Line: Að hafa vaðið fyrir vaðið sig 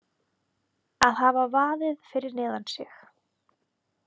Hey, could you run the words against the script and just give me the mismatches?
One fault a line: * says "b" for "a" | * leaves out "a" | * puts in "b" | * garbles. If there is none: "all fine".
* says "neðan" for "vaðið"